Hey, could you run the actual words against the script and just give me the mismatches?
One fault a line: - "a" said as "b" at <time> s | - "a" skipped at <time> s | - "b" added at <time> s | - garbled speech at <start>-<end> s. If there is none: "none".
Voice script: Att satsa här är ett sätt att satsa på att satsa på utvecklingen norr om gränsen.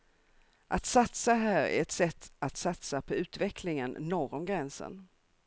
- "att satsa på" skipped at 3.1 s